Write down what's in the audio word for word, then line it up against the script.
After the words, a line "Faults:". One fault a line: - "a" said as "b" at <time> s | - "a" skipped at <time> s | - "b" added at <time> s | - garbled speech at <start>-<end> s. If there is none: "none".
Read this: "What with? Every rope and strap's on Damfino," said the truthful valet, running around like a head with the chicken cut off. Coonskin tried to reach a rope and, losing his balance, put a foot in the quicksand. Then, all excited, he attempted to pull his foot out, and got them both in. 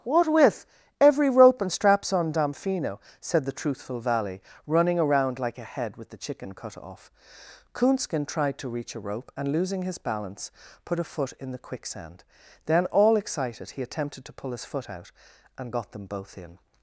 "What with? Every rope and strap's on Damfino," said the truthful valley, running around like a head with the chicken cut off. Coonskin tried to reach a rope and, losing his balance, put a foot in the quicksand. Then, all excited, he attempted to pull his foot out, and got them both in.
Faults:
- "valet" said as "valley" at 4.0 s